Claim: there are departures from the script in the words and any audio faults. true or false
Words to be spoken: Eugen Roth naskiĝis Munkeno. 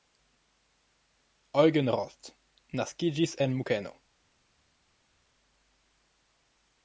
true